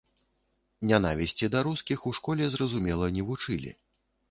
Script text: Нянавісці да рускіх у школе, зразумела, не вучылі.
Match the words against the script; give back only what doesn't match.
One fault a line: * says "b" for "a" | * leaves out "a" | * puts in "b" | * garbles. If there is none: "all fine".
all fine